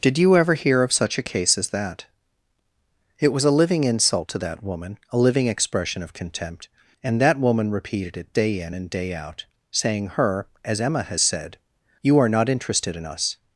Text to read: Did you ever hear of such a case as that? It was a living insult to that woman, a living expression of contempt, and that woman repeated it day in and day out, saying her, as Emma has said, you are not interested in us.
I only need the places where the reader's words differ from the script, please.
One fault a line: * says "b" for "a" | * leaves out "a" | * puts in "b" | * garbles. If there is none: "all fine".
all fine